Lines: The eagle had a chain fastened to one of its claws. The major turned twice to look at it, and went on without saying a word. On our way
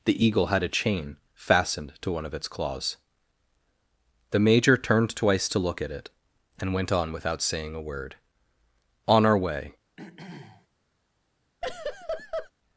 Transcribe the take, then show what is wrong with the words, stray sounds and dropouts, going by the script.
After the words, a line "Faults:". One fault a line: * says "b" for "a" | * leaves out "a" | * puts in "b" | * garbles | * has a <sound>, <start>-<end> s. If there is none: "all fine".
The eagle had a chain fastened to one of its claws. The major turned twice to look at it, and went on without saying a word. On our way
Faults:
* has a throat clearing, 10.0-10.7 s
* has a laugh, 11.6-12.5 s